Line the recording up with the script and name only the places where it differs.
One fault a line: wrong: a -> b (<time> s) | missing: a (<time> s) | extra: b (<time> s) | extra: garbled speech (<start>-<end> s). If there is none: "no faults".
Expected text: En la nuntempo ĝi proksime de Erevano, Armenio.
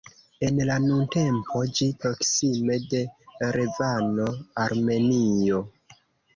no faults